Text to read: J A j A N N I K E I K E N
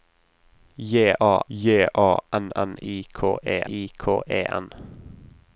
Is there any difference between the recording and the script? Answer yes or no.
no